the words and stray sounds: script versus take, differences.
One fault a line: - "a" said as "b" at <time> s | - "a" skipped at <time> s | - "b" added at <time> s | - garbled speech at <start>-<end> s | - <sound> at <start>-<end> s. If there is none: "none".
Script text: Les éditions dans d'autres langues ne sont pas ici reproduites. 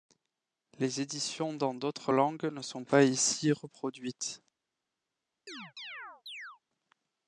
- chirp at 5.5-6.6 s